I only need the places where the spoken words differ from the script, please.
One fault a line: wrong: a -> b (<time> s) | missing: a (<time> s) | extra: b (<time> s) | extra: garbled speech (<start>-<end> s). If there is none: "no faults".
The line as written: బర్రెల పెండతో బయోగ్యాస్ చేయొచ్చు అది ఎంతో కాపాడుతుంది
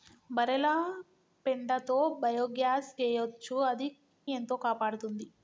no faults